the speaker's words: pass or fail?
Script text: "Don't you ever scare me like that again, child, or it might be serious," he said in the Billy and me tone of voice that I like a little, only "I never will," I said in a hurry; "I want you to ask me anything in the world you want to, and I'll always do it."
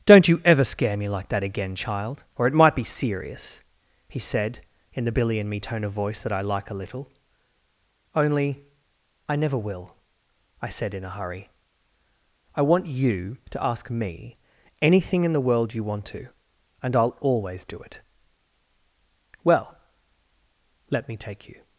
fail